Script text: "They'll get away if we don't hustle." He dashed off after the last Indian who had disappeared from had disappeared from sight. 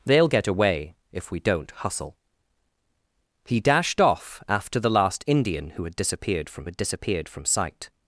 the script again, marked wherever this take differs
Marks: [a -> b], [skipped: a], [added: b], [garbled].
"They'll get away if we don't hustle." He dashed off after the last Indian who had disappeared from had disappeared from sight.